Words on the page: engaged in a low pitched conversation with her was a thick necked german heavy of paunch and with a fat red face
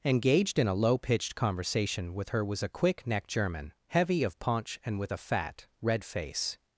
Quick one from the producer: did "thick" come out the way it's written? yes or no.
no